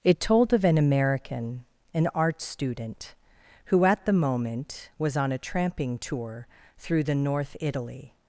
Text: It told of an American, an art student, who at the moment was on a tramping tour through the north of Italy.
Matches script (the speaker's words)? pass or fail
fail